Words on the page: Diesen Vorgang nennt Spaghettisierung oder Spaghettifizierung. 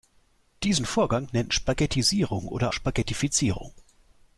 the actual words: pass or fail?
pass